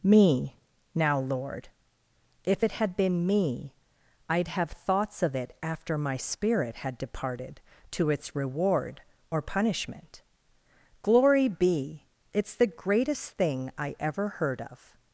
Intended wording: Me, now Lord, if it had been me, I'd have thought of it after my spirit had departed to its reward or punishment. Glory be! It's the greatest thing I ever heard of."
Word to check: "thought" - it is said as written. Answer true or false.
false